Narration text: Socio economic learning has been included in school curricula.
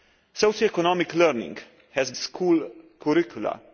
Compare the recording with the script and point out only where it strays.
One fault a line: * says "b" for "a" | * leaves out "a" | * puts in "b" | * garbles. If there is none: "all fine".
* leaves out "been included in"